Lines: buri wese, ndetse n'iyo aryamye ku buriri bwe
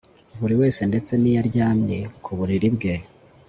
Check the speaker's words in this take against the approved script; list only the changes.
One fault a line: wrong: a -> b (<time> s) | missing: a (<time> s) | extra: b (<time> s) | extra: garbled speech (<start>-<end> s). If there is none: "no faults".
no faults